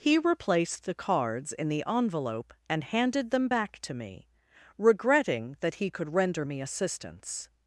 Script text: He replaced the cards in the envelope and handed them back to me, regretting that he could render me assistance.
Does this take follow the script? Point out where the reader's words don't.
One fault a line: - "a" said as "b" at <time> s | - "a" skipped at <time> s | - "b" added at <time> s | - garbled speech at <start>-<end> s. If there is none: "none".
none